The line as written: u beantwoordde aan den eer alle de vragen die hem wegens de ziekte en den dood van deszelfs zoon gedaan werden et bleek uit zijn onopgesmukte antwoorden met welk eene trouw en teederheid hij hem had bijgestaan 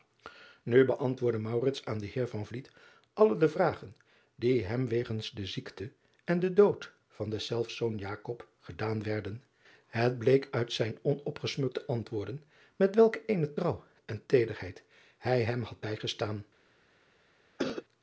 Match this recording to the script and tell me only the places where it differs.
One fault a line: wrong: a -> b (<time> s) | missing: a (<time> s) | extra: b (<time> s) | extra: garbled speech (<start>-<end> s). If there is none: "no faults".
no faults